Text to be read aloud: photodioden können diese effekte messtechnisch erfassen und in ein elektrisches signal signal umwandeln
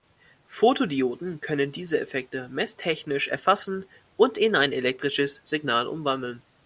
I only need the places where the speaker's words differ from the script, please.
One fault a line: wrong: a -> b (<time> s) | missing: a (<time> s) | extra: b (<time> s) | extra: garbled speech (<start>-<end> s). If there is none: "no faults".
missing: signal (5.9 s)